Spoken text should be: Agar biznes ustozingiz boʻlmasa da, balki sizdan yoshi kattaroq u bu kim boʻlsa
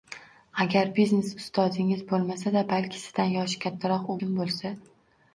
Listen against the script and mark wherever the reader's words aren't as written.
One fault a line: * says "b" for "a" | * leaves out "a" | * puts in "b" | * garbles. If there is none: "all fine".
* leaves out "bu"